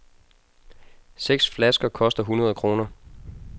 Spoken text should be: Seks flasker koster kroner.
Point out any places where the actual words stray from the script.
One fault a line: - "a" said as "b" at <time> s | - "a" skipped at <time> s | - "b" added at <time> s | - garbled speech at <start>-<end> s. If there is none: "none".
- "hundrede" added at 2.2 s